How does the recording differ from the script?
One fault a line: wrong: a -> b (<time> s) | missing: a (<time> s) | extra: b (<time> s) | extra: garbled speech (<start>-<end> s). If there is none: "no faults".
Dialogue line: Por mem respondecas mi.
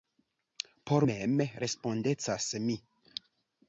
no faults